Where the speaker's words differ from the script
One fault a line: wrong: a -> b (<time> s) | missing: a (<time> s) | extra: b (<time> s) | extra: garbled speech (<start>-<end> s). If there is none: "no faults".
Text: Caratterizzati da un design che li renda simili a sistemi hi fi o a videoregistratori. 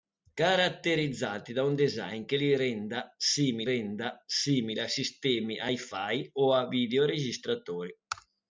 extra: renda simili (3.6 s)